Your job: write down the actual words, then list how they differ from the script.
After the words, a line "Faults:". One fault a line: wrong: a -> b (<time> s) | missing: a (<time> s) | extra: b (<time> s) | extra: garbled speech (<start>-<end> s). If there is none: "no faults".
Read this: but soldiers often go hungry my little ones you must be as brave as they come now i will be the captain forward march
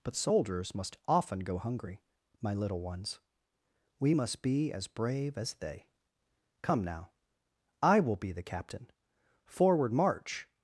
but soldiers must often go hungry my little ones we must be as brave as they come now i will be the captain forward march
Faults:
extra: must (0.7 s)
wrong: you -> we (4.0 s)